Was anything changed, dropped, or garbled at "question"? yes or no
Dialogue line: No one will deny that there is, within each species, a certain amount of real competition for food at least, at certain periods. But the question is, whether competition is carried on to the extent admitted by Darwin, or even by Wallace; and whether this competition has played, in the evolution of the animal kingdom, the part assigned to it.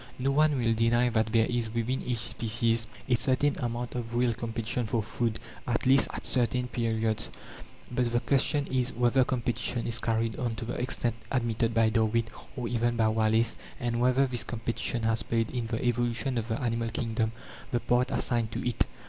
no